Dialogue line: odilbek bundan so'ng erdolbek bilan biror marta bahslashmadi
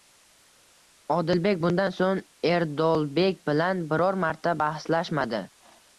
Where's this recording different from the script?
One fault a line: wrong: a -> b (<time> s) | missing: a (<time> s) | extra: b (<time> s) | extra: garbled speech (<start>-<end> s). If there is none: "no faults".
no faults